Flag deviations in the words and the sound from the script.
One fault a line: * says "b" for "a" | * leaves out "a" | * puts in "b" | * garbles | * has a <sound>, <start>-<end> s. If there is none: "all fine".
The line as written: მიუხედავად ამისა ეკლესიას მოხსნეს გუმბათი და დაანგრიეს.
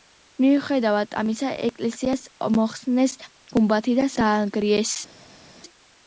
all fine